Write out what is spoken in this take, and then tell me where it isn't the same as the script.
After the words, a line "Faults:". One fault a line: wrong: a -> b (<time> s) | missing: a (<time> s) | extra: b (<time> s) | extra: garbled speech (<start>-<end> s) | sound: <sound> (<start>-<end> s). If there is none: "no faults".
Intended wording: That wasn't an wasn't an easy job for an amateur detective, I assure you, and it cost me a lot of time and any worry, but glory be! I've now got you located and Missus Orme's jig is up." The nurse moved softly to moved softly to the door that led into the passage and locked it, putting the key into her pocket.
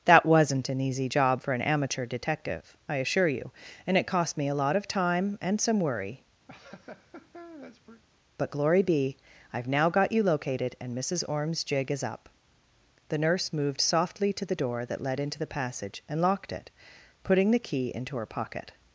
That wasn't an easy job for an amateur detective, I assure you, and it cost me a lot of time and some worry, but glory be! I've now got you located and Missus Orme's jig is up." The nurse moved softly to the door that led into the passage and locked it, putting the key into her pocket.
Faults:
missing: wasn't an (0.8 s)
wrong: any -> some (5.6 s)
sound: laugh (6.5-8.0 s)
missing: moved softly to (14.5 s)